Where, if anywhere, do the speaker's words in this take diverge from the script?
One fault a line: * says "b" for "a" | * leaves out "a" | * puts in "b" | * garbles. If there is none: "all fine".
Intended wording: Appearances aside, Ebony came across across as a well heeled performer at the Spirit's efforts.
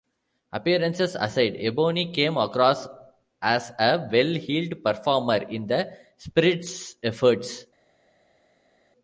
* leaves out "across"
* says "in" for "at"